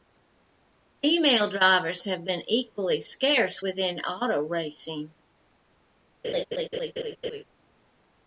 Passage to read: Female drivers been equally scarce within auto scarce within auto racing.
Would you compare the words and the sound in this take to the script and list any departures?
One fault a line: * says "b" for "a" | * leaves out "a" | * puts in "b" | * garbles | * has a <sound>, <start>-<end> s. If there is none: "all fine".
* puts in "have"
* leaves out "scarce within auto"
* has a laugh, 6.2-7.4 s